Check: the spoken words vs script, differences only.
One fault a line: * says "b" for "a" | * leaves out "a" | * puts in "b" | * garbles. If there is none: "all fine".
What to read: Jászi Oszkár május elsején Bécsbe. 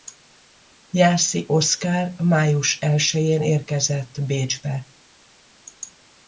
* puts in "érkezett"